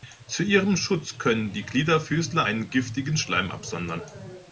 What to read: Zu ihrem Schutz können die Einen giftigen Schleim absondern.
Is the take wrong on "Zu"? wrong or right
right